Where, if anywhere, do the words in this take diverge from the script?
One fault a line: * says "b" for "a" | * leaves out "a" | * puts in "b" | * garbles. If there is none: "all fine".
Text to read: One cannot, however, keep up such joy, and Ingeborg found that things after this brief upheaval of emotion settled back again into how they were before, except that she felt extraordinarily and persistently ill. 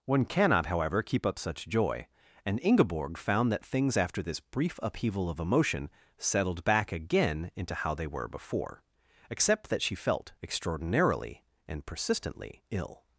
all fine